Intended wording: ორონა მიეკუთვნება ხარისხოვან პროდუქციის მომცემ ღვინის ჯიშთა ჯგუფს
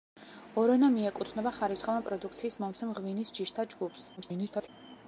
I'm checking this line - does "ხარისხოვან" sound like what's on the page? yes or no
yes